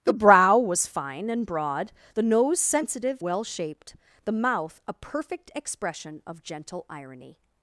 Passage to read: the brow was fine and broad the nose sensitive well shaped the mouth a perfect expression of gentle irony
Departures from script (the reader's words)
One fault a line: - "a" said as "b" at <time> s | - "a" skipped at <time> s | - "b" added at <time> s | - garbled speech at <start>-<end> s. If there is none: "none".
none